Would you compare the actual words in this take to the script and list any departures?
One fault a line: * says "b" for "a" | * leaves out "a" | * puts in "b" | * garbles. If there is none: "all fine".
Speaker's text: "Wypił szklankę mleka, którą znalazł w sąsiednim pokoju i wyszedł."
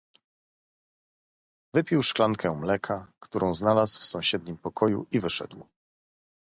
all fine